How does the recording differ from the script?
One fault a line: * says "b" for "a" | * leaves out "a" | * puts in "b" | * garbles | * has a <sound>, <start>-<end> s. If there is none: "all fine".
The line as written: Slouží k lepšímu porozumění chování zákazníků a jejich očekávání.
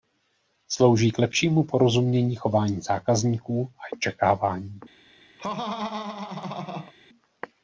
* leaves out "jejich"
* has a laugh, 5.4-6.9 s